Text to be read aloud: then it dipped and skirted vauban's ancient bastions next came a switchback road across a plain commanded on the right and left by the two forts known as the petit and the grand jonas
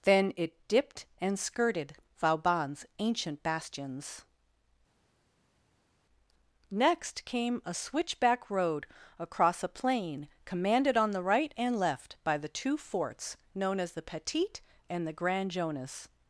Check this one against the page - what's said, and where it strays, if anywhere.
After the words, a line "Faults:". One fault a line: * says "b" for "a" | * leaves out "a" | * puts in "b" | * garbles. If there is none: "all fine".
then it dipped and skirted vauban's ancient bastions next came a switchback road across a plain commanded on the right and left by the two forts known as the petit and the grand jonas
Faults:
all fine